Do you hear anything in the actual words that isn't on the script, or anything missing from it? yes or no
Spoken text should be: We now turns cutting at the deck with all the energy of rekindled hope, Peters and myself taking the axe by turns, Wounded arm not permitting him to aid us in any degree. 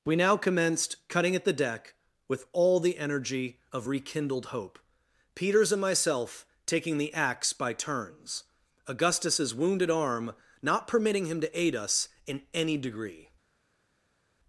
yes